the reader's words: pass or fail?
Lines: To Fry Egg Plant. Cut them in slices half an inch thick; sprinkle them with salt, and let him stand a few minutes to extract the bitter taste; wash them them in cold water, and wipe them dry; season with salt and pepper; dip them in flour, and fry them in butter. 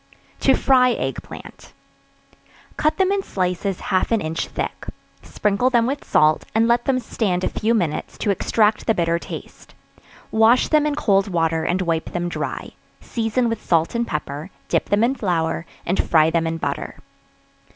fail